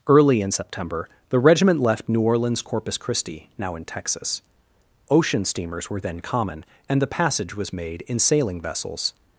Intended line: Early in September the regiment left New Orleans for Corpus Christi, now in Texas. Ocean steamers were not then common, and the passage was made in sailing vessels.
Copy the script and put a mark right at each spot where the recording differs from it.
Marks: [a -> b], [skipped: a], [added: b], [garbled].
Early in September the regiment left New Orleans [skipped: for] Corpus Christi, now in Texas. Ocean steamers were [skipped: not] then common, and the passage was made in sailing vessels.